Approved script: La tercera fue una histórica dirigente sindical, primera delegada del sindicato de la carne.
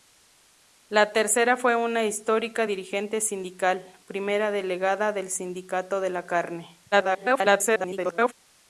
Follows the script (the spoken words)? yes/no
no